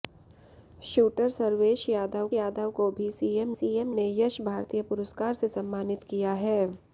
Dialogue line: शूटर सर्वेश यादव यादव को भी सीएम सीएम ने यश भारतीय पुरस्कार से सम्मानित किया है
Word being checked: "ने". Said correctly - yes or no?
yes